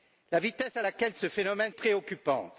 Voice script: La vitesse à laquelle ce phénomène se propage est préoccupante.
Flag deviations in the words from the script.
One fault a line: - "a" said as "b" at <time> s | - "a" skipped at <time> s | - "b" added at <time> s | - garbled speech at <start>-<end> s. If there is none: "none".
- "se propage est" skipped at 1.7 s